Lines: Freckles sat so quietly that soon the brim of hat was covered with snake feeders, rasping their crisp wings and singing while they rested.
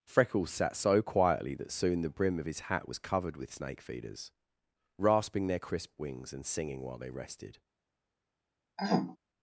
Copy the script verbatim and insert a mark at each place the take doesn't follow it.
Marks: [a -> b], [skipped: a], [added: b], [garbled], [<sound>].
Freckles sat so quietly that soon the brim of [added: his] hat was covered with snake feeders, rasping their crisp wings and singing while they rested. [throat clearing]